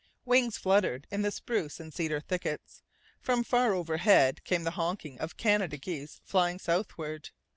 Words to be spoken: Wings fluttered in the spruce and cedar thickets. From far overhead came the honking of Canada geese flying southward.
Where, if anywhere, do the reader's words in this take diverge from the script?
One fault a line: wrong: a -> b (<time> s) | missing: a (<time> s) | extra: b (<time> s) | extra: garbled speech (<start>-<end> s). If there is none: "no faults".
no faults